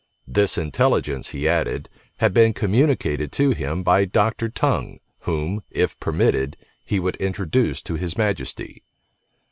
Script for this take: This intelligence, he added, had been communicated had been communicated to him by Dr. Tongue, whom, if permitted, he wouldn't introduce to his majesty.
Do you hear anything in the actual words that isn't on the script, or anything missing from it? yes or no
yes